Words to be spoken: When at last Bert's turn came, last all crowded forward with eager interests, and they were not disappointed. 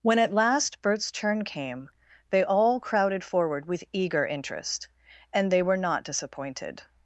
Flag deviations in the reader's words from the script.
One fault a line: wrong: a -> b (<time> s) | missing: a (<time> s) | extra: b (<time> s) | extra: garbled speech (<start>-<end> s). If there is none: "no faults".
wrong: last -> they (2.3 s)
wrong: interests -> interest (4.2 s)